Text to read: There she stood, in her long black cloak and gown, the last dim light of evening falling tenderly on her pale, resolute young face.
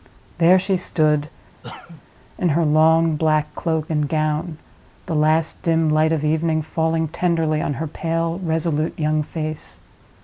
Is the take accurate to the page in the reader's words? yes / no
yes